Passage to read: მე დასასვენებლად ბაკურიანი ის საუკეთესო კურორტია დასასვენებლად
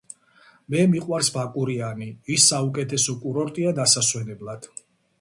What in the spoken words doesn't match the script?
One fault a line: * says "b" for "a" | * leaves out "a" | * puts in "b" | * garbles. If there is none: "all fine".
* says "მიყვარს" for "დასასვენებლად"